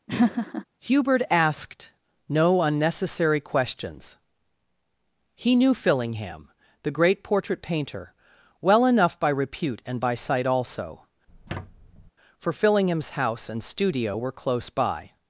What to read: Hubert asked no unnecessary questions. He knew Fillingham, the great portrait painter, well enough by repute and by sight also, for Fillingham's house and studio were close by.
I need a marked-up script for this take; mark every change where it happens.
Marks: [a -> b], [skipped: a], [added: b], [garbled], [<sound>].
[laugh] Hubert asked no unnecessary questions. He knew Fillingham, the great portrait painter, well enough by repute and by sight also, [squeak] for Fillingham's house and studio were close by.